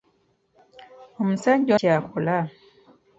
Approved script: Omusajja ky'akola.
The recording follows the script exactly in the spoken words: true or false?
true